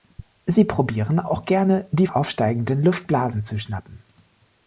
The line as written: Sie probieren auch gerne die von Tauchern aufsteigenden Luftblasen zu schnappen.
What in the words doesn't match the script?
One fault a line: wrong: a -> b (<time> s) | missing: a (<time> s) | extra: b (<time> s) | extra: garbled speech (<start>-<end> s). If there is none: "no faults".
missing: von Tauchern (2.1 s)